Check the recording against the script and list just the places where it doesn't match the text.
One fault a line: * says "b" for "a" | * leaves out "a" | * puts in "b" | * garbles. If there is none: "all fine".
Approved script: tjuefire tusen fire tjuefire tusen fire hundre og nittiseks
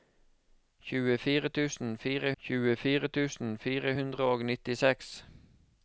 all fine